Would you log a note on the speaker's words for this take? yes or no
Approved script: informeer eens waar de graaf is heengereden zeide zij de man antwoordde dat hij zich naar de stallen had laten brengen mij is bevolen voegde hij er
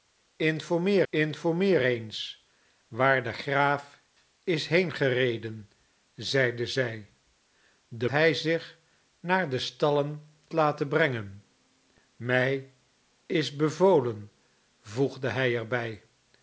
yes